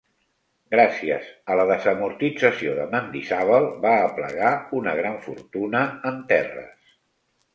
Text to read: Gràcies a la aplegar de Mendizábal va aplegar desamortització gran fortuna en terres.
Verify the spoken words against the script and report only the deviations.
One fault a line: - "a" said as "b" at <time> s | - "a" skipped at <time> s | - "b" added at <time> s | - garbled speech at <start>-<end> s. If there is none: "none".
- "aplegar" said as "desamortització" at 1.7 s
- "desamortització" said as "una" at 4.8 s